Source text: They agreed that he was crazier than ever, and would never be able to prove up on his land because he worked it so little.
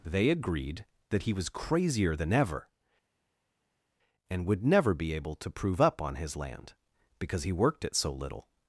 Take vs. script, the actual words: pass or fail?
pass